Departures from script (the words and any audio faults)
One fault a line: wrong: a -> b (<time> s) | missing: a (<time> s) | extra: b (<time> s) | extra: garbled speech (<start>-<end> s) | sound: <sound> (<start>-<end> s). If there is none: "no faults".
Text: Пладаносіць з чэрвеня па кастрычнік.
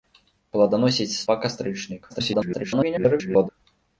missing: чэрвеня (1.2 s)
extra: garbled speech (2.1-3.5 s)